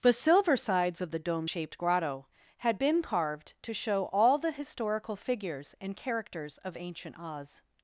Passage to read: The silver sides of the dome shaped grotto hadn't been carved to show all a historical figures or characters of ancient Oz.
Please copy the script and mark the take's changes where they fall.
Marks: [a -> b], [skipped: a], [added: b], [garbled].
The silver sides of the dome shaped grotto [hadn't -> had] been carved to show all [a -> the] historical figures [or -> and] characters of ancient Oz.